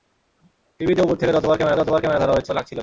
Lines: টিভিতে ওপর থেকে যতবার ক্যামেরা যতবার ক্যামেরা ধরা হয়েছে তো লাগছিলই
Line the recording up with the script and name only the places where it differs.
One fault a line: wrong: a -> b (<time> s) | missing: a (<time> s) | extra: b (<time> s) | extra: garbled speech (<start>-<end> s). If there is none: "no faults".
no faults